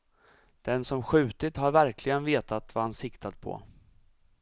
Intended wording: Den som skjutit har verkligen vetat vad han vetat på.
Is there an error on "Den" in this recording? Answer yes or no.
no